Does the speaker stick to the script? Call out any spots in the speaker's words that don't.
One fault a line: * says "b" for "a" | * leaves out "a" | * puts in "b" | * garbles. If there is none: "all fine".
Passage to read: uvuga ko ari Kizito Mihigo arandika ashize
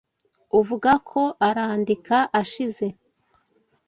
* leaves out "ari Kizito Mihigo"